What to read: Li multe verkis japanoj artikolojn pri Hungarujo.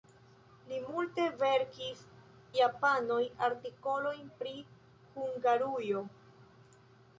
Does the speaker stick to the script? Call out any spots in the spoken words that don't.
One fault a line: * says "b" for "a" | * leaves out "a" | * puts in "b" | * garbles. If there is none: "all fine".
all fine